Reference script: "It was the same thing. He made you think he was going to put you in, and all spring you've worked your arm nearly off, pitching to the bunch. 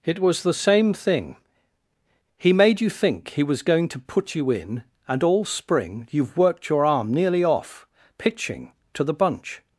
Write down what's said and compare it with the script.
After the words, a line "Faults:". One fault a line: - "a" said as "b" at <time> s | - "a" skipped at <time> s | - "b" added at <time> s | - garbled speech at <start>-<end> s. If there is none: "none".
"It was the same thing. He made you think he was going to put you in, and all spring you've worked your arm nearly off, pitching to the bunch.
Faults:
none